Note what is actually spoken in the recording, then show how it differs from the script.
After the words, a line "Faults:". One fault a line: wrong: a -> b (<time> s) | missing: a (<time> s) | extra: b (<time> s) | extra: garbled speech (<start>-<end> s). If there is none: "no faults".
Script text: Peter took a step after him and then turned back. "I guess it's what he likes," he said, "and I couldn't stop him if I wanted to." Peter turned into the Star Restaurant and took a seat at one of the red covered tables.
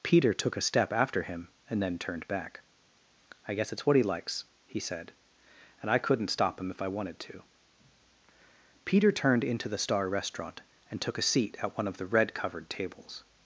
Peter took a step after him and then turned back. "I guess it's what he likes," he said, "and I couldn't stop him if I wanted to." Peter turned into the Star Restaurant and took a seat at one of the red covered tables.
Faults:
no faults